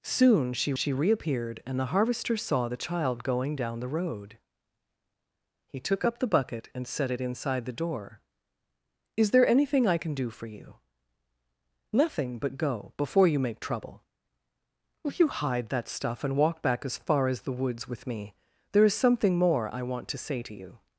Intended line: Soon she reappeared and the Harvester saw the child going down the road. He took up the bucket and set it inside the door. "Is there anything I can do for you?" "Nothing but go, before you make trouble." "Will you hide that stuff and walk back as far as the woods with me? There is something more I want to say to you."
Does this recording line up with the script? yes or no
no